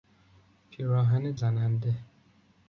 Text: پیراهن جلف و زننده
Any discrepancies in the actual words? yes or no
yes